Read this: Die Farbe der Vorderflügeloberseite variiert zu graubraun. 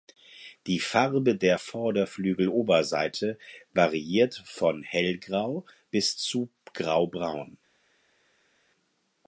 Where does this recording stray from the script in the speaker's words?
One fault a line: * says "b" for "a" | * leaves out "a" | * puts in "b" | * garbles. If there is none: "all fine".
* puts in "von hellgrau bis"